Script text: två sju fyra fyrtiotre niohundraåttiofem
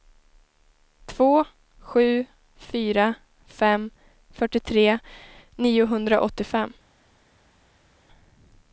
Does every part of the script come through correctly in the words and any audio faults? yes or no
no